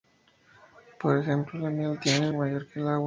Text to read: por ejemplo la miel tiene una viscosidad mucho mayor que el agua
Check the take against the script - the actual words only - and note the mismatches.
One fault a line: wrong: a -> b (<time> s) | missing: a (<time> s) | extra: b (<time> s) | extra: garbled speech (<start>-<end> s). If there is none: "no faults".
missing: una viscosidad mucho (2.3 s)